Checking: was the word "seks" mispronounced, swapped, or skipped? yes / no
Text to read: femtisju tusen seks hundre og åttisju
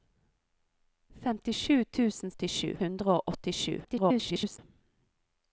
yes